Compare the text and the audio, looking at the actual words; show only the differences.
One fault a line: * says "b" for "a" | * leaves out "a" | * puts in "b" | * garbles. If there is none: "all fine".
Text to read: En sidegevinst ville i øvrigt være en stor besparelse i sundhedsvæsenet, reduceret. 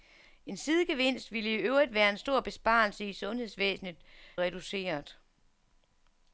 all fine